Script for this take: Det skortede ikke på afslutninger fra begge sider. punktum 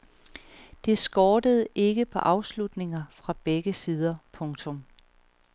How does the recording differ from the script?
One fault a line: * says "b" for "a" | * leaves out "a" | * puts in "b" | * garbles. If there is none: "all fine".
all fine